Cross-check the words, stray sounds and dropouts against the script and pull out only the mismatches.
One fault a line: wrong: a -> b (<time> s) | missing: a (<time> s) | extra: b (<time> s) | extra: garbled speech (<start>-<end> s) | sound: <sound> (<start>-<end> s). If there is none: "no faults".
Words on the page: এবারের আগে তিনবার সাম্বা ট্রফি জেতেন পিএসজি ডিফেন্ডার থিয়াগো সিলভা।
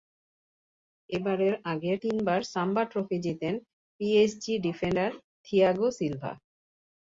no faults